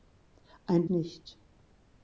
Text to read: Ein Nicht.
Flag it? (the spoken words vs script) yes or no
no